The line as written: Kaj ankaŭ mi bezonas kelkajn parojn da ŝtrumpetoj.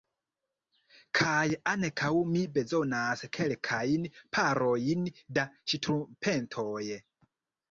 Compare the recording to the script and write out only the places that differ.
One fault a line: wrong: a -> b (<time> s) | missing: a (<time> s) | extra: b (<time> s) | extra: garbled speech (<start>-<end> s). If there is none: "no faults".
no faults